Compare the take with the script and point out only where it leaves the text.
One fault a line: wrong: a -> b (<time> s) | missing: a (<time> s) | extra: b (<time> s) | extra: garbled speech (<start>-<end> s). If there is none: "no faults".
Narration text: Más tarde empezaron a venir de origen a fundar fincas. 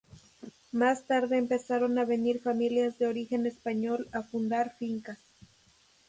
extra: familias (2.4 s)
extra: español (3.5 s)